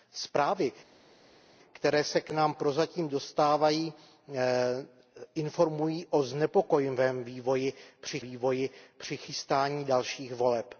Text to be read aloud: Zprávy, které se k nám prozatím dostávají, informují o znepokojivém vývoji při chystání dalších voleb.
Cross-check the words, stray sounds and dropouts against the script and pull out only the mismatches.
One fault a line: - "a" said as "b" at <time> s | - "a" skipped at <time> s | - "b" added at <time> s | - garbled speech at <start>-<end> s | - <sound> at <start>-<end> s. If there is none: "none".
- "vývoji při" added at 8.2 s